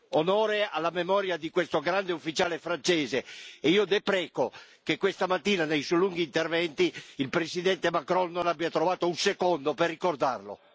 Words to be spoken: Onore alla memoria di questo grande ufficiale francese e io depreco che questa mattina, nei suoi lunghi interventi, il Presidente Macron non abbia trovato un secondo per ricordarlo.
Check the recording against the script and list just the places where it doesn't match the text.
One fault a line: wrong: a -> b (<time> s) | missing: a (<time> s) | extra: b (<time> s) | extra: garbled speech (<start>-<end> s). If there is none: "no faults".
no faults